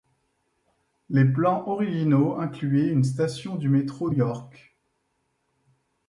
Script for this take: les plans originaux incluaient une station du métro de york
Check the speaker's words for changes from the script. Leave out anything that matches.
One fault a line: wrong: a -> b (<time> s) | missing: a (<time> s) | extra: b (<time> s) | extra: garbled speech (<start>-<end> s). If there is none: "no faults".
no faults